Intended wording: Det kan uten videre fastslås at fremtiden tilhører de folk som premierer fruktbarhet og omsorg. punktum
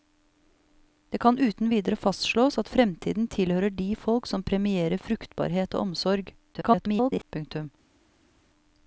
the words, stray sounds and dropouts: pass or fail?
fail